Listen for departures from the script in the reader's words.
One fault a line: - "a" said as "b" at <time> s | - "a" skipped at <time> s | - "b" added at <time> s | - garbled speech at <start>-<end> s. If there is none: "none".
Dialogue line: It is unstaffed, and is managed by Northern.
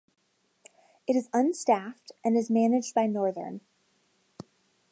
none